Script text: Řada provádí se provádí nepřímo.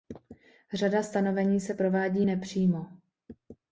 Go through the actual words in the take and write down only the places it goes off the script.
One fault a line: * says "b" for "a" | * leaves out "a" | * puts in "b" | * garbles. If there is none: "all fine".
* says "stanovení" for "provádí"